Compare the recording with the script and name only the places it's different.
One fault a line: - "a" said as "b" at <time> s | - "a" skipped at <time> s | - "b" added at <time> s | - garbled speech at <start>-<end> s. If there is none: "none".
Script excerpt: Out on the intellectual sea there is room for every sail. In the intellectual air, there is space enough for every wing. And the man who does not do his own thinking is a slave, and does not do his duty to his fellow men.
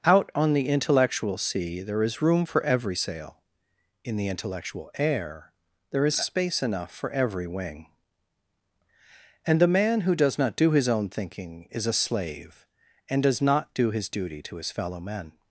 none